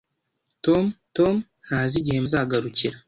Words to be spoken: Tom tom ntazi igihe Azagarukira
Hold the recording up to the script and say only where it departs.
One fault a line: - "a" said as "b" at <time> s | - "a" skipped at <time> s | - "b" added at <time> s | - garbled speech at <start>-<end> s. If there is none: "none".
none